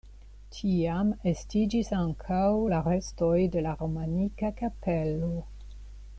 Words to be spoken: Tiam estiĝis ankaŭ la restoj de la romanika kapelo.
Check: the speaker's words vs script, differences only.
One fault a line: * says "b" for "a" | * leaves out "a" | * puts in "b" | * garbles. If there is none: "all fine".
all fine